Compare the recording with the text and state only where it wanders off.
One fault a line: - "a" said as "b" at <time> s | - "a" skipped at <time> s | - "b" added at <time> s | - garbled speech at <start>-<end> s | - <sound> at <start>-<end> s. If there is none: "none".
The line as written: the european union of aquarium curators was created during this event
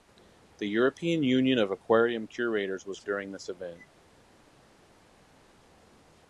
- "created" skipped at 3.0 s